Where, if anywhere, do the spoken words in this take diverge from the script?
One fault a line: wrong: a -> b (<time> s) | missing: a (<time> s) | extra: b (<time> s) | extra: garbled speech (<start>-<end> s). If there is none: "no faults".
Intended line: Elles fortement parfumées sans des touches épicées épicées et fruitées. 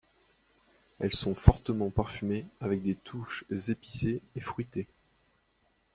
extra: sont (1.1 s)
wrong: sans -> avec (2.6 s)
missing: épicées (4.2 s)